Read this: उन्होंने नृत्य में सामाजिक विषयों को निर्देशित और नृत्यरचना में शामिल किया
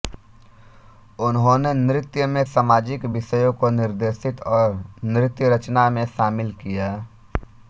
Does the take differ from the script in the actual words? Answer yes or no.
no